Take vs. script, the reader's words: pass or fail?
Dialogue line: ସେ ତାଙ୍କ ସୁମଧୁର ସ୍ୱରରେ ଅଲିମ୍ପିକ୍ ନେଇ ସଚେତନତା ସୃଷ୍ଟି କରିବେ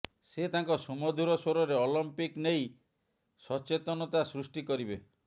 pass